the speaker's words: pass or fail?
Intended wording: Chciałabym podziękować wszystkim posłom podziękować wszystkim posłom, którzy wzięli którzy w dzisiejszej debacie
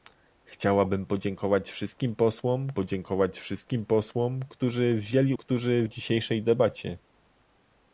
pass